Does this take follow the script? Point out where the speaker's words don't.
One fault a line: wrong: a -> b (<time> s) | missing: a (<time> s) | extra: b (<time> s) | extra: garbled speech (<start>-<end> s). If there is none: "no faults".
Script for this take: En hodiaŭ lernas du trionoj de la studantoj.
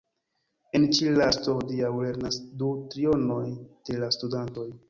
extra: ĉi lasto (1.0 s)